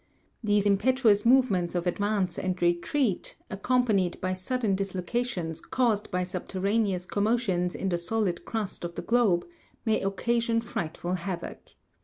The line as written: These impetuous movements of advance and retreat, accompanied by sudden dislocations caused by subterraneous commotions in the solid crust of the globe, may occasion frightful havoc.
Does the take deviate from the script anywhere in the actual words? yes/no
no